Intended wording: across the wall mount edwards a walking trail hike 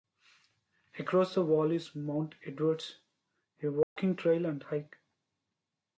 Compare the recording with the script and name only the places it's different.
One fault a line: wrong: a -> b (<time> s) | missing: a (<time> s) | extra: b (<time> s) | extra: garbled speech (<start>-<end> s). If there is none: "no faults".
extra: is (1.7 s)
extra: and (4.5 s)